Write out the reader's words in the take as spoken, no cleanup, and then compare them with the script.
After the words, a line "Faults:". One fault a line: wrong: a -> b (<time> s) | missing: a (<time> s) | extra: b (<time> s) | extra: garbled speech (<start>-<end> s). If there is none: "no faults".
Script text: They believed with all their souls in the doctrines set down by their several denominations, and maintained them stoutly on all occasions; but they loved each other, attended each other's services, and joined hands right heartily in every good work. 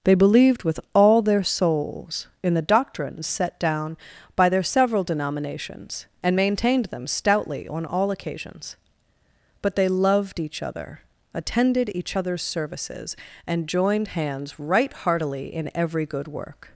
They believed with all their souls in the doctrines set down by their several denominations, and maintained them stoutly on all occasions; but they loved each other, attended each other's services, and joined hands right heartily in every good work.
Faults:
no faults